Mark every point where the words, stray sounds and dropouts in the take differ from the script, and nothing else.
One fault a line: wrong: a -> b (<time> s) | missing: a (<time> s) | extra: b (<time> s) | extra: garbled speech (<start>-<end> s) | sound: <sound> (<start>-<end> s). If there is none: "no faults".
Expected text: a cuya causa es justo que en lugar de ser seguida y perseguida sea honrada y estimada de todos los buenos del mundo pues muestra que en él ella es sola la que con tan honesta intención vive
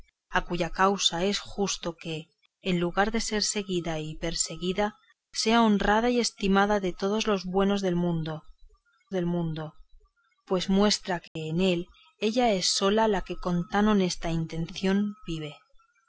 extra: del mundo (9.1 s)
sound: dropout (11.3-11.4 s)